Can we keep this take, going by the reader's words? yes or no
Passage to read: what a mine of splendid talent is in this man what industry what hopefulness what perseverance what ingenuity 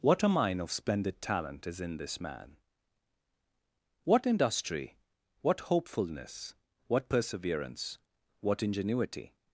yes